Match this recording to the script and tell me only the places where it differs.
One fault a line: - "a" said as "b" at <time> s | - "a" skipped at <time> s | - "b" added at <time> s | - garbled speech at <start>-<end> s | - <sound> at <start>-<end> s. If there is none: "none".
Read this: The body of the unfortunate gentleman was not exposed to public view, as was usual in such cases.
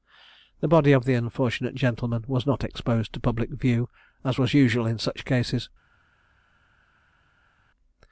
none